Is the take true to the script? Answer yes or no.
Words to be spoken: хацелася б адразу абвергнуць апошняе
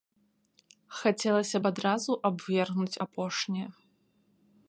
yes